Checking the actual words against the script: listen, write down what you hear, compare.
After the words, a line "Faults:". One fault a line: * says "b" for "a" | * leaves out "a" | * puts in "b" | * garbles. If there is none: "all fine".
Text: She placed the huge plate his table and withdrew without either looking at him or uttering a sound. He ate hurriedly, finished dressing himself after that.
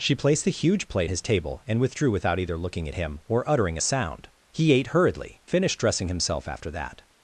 She placed the huge plate his table and withdrew without either looking at him or uttering a sound. He ate hurriedly, finished dressing himself after that.
Faults:
all fine